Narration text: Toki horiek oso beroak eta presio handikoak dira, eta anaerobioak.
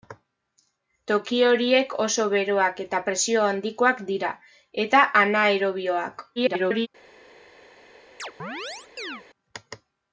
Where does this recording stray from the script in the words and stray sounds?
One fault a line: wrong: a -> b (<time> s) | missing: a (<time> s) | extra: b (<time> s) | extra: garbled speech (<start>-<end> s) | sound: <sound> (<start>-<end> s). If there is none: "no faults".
extra: garbled speech (6.4-6.9 s)
sound: chirp (8.2-9.2 s)